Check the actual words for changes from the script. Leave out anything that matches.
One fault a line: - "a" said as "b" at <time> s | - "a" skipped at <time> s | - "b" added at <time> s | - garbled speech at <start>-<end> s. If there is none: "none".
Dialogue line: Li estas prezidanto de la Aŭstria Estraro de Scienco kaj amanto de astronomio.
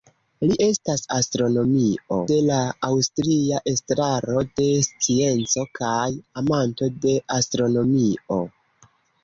- "prezidanto" said as "astronomio" at 1.2 s